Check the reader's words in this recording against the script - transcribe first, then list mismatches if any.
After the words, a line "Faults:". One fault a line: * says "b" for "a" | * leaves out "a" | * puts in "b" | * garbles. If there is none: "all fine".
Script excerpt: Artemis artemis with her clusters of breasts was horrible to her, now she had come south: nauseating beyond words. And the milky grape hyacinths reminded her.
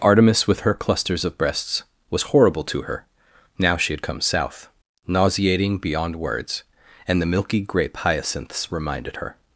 Artemis with her clusters of breasts was horrible to her, now she had come south: nauseating beyond words. And the milky grape hyacinths reminded her.
Faults:
* leaves out "artemis"